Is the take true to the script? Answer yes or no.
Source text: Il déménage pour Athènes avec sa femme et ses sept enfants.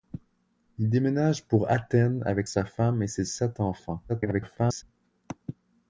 no